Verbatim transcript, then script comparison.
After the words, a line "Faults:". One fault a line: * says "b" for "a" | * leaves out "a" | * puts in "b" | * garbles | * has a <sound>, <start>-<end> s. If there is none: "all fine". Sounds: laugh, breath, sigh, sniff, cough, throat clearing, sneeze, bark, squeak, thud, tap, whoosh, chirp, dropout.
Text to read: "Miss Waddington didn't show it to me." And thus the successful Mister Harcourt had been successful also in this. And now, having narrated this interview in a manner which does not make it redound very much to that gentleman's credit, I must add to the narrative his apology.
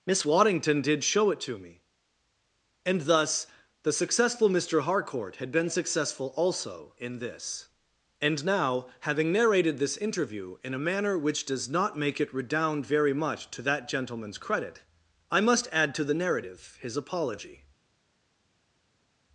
"Miss Waddington did show it to me." And thus the successful Mister Harcourt had been successful also in this. And now, having narrated this interview in a manner which does not make it redound very much to that gentleman's credit, I must add to the narrative his apology.
Faults:
* says "did" for "didn't"